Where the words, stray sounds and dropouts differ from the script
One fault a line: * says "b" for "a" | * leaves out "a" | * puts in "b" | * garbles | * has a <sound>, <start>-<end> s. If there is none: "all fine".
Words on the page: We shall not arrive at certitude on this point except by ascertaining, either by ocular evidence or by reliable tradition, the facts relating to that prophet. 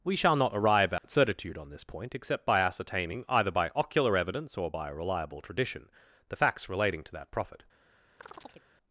* has a dropout, 1.0-1.0 s
* has a chirp, 8.2-8.7 s